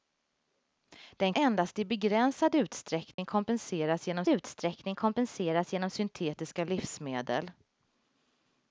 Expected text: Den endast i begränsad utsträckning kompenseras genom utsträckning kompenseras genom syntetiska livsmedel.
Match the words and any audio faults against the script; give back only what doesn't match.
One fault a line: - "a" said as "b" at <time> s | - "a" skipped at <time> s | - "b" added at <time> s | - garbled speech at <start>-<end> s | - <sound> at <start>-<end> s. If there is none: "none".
- dropout at 3.1-3.2 s